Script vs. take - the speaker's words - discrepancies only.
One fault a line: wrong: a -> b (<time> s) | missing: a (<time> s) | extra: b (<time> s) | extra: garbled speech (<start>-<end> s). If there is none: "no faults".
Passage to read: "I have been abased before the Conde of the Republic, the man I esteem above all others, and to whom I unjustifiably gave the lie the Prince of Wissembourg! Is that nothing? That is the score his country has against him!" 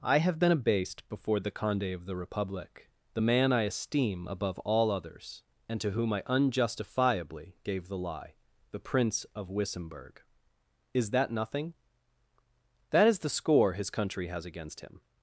no faults